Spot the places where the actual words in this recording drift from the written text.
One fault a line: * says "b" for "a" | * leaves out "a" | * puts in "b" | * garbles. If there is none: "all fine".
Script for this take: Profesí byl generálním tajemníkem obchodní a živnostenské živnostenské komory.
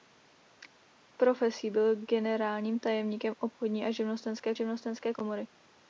all fine